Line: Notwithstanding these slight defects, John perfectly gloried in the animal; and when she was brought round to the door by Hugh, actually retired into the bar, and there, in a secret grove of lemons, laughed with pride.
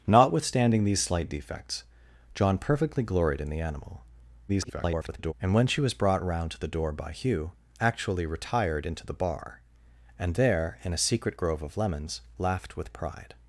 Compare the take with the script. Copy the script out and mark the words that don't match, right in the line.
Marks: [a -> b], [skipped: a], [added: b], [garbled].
Notwithstanding these slight defects, John perfectly gloried in the animal; [garbled] and when she was brought round to the door by Hugh, actually retired into the bar, and there, in a secret grove of lemons, laughed with pride.